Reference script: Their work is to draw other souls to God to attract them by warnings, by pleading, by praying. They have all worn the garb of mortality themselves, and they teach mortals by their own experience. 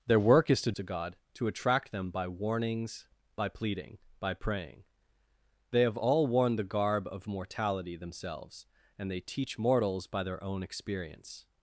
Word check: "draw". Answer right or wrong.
wrong